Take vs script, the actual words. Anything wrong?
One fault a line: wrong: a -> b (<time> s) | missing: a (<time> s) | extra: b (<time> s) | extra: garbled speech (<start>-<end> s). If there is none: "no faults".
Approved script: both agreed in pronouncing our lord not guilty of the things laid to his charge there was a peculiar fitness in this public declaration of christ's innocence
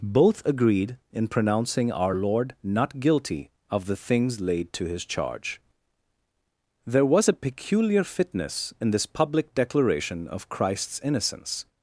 no faults